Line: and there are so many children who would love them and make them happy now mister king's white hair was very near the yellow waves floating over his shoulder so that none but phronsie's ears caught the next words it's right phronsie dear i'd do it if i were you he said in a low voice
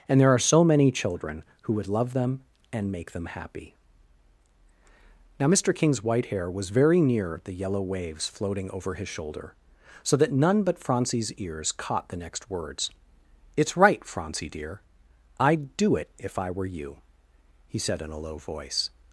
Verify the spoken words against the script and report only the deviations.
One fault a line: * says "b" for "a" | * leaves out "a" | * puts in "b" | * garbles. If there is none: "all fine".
all fine